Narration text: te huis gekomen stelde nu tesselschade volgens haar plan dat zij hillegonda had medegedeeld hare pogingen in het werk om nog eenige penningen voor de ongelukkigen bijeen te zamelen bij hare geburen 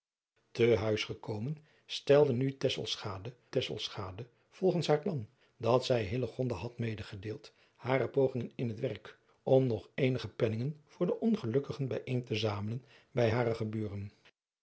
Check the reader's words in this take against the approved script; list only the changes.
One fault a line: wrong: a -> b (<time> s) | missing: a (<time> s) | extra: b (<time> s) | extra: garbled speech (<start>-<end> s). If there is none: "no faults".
extra: tesselschade (3.5 s)